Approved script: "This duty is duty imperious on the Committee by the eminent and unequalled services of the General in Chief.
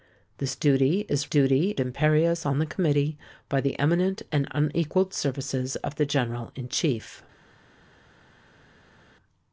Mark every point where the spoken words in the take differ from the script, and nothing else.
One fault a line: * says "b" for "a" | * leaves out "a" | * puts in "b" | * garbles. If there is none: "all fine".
all fine